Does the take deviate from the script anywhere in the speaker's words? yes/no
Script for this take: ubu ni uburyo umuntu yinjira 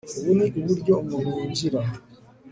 no